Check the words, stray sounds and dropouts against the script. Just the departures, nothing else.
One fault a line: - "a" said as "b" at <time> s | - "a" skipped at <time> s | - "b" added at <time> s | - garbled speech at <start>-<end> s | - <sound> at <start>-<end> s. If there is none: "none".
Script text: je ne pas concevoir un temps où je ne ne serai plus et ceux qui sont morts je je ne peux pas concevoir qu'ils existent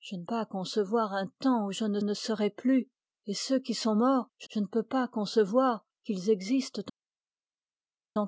none